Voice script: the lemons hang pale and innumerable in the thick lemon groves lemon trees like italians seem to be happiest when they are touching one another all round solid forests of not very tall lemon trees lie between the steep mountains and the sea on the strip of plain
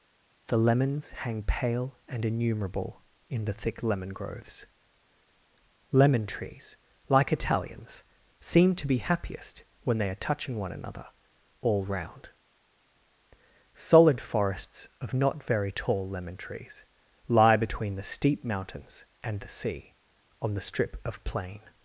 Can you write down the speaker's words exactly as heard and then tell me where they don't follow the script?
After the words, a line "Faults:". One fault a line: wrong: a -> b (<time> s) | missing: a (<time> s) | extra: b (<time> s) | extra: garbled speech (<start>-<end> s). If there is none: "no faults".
the lemons hang pale and innumerable in the thick lemon groves lemon trees like italians seem to be happiest when they are touching one another all round solid forests of not very tall lemon trees lie between the steep mountains and the sea on the strip of plain
Faults:
no faults